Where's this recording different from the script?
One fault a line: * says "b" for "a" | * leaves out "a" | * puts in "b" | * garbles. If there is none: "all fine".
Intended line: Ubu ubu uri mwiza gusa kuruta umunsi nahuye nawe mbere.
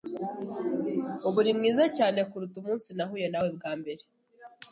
* leaves out "ubu"
* says "cyane" for "gusa"
* puts in "bwa"